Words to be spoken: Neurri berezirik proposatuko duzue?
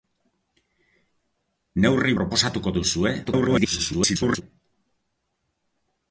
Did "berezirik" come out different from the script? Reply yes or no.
yes